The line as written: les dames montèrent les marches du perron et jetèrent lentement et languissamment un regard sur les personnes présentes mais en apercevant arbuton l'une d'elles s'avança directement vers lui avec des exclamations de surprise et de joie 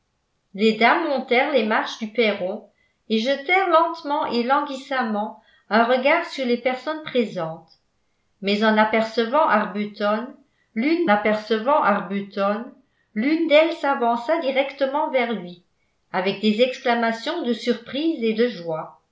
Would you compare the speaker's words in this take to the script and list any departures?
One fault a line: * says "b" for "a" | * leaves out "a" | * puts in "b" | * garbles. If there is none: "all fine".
* puts in "apercevant arbuton l'une"